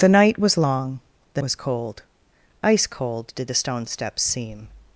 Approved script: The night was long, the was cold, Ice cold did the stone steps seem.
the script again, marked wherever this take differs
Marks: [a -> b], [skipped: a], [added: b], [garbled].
The night was long, the was cold, Ice cold did the stone steps seem.